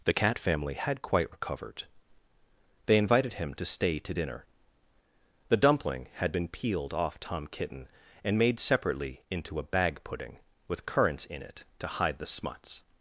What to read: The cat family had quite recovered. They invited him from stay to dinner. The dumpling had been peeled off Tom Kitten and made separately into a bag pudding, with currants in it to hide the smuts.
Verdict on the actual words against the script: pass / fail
fail